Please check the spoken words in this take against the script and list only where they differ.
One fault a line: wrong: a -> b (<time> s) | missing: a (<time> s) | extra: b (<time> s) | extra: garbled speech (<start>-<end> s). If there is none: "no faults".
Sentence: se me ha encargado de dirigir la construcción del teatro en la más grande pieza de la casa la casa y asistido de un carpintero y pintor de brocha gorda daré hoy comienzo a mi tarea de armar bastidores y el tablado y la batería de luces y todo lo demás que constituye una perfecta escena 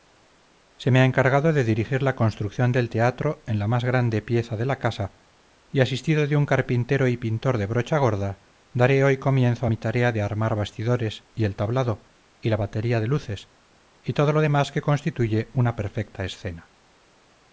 missing: la casa (5.1 s)